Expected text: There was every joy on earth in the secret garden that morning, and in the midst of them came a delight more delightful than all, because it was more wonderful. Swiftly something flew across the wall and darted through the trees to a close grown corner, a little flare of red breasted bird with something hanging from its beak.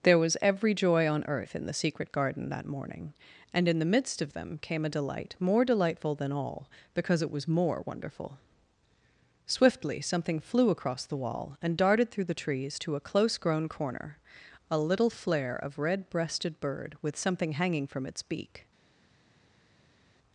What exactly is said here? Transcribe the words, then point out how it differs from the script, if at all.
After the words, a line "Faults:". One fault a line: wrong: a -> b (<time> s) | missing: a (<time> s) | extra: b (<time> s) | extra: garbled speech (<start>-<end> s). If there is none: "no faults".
There was every joy on earth in the secret garden that morning, and in the midst of them came a delight more delightful than all, because it was more wonderful. Swiftly something flew across the wall and darted through the trees to a close grown corner, a little flare of red breasted bird with something hanging from its beak.
Faults:
no faults